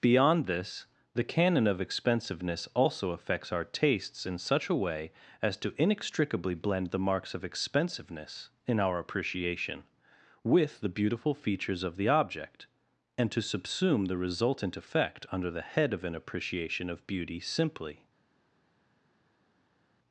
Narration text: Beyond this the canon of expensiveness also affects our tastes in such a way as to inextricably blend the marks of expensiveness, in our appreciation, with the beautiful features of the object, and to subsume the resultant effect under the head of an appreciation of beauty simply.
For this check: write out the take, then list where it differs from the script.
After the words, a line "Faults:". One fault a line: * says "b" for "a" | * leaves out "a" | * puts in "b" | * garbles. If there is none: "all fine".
Beyond this the canon of expensiveness also affects our tastes in such a way as to inextricably blend the marks of expensiveness, in our appreciation, with the beautiful features of the object, and to subsume the resultant effect under the head of an appreciation of beauty simply.
Faults:
all fine